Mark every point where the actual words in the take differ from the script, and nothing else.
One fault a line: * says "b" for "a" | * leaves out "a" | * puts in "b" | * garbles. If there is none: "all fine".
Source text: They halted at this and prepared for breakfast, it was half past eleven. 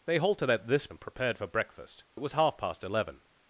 all fine